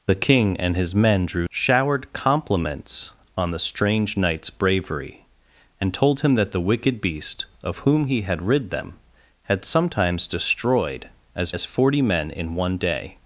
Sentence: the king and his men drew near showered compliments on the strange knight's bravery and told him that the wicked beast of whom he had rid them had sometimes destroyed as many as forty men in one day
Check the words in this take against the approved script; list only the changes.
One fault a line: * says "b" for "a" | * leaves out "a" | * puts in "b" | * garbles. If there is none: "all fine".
* leaves out "near"
* leaves out "many"